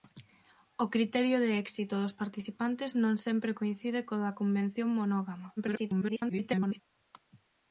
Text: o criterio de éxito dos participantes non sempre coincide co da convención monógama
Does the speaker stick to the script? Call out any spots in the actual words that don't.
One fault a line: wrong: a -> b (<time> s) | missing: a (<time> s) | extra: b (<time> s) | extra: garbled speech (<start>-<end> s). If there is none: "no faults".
extra: garbled speech (5.6-6.8 s)